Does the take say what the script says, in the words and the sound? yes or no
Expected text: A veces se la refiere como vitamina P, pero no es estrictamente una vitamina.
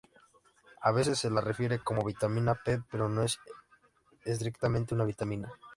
yes